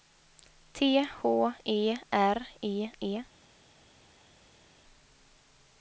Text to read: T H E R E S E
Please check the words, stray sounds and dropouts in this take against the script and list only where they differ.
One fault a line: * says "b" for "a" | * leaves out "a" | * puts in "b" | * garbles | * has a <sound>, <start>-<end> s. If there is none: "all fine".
* leaves out "S"